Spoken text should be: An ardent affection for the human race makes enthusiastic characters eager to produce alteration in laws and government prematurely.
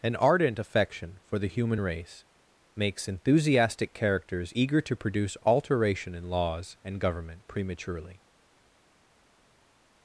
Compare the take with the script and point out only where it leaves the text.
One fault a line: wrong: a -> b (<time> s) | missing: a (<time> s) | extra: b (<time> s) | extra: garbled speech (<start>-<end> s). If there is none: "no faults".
no faults